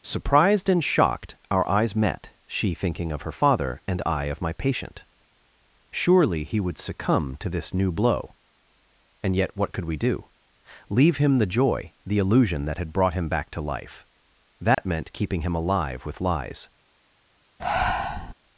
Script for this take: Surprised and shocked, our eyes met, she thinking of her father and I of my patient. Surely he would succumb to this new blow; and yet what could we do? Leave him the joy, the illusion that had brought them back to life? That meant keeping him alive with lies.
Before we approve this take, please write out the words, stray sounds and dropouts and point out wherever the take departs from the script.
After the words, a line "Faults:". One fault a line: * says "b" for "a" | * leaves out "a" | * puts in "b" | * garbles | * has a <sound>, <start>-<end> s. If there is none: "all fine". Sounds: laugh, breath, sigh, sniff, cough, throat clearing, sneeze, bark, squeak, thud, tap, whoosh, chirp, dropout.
Surprised and shocked, our eyes met, she thinking of her father and I of my patient. Surely he would succumb to this new blow; and yet what could we do? Leave him the joy, the illusion that had brought him back to life? That meant keeping him alive with lies.
Faults:
* says "him" for "them"
* has a dropout, 14.7-14.8 s
* has a breath, 17.6-18.3 s